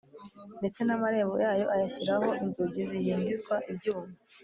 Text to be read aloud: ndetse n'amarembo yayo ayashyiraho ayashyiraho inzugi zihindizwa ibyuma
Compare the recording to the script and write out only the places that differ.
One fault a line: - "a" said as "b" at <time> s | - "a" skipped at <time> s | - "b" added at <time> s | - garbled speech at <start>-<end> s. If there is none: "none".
- "ayashyiraho" skipped at 2.3 s